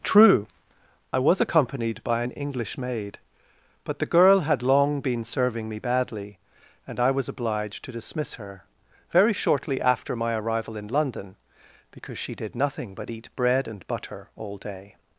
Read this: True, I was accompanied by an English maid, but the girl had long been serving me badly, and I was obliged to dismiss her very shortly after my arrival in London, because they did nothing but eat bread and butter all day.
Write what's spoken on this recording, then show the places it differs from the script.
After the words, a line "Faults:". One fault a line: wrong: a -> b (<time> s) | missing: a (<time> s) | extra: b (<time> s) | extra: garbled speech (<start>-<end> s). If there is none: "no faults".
True, I was accompanied by an English maid, but the girl had long been serving me badly, and I was obliged to dismiss her very shortly after my arrival in London, because she did nothing but eat bread and butter all day.
Faults:
wrong: they -> she (12.2 s)